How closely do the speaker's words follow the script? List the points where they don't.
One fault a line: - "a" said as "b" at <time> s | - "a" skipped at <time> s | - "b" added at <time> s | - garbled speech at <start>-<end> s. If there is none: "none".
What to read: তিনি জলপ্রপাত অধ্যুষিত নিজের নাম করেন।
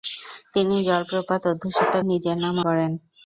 none